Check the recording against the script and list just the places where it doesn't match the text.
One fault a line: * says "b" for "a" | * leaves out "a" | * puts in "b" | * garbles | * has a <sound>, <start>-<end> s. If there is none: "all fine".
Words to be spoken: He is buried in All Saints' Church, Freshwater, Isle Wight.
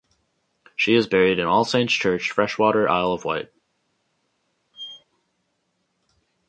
* says "She" for "He"
* puts in "of"
* has a squeak, 4.7-5.0 s